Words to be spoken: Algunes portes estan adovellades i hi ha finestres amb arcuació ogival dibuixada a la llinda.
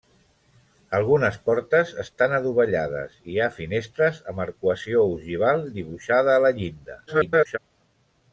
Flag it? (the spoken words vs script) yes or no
yes